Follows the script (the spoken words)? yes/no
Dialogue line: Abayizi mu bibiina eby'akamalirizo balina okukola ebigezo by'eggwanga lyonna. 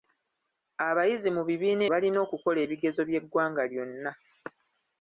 no